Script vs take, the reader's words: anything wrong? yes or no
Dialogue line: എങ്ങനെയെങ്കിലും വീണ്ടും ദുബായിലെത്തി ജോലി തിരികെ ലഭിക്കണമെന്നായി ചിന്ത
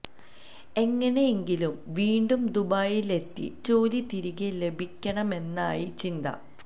no